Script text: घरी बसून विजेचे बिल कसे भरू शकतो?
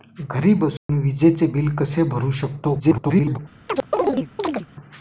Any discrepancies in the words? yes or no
yes